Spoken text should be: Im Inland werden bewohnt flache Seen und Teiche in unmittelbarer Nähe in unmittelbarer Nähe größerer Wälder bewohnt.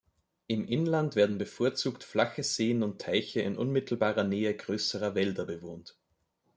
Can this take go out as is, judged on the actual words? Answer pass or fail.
fail